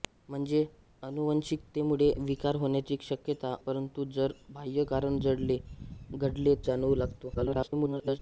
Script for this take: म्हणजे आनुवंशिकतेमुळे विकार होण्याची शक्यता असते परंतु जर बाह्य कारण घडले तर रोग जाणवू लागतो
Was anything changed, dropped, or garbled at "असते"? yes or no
yes